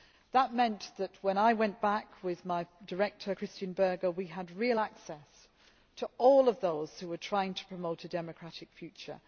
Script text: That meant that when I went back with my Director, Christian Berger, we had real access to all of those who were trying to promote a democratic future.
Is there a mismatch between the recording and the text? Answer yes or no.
no